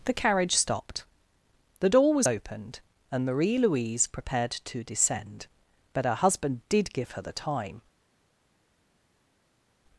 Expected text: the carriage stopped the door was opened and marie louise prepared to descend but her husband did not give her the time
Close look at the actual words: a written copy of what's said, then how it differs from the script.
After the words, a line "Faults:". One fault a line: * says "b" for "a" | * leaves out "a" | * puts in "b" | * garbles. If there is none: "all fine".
the carriage stopped the door was opened and marie louise prepared to descend but her husband did give her the time
Faults:
* leaves out "not"